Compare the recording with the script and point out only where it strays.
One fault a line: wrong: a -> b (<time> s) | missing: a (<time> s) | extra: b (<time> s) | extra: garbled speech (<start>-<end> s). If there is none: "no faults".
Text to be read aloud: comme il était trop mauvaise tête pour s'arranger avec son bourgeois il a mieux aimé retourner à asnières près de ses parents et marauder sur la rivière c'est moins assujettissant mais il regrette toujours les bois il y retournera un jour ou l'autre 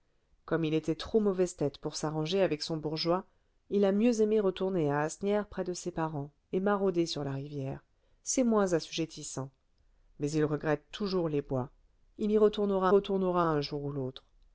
extra: retournera (12.9 s)